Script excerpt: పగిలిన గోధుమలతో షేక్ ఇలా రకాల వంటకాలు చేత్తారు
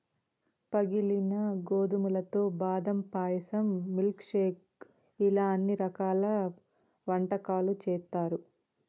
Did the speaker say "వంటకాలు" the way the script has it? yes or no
yes